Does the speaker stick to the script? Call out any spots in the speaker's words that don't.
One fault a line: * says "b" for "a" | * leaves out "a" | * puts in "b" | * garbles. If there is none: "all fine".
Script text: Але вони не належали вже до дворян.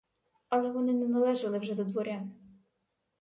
all fine